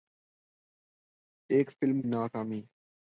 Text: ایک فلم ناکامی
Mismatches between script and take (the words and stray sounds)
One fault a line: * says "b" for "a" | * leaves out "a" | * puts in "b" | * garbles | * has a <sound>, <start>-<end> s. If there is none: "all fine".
all fine